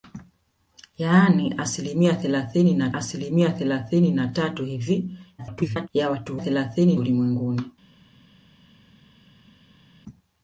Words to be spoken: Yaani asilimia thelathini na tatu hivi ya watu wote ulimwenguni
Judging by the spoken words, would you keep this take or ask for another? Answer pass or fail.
fail